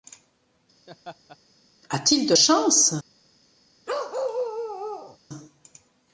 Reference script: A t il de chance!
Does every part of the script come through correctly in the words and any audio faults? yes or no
no